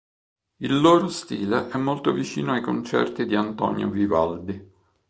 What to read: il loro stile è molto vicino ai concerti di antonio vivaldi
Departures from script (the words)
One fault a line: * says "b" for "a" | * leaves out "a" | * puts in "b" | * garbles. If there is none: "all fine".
all fine